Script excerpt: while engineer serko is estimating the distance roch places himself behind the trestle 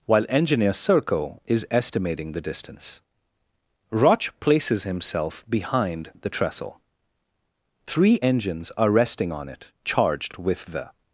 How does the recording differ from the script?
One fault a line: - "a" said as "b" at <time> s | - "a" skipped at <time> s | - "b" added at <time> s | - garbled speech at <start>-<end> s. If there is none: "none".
- "three engines are resting on it charged with the" added at 7.9 s